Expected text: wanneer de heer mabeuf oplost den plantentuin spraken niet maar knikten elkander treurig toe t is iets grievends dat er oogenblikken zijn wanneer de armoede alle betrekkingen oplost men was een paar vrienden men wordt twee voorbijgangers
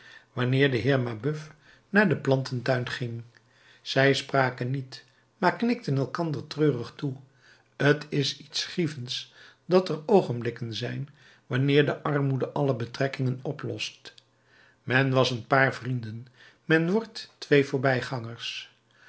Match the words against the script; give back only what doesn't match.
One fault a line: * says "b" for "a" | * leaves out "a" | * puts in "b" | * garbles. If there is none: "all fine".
* says "naar" for "oplost"
* puts in "ging zij"